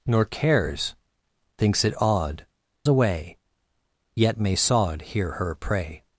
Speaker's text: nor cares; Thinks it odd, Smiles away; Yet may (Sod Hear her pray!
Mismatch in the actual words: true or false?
true